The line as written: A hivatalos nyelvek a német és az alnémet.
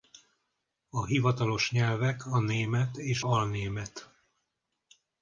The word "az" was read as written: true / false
false